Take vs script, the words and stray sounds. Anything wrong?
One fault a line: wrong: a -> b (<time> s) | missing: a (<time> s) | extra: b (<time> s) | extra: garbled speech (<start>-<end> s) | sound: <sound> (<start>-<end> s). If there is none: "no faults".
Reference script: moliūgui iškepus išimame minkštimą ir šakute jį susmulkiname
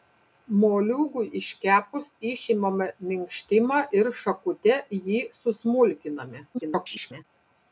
extra: garbled speech (6.5-7.2 s)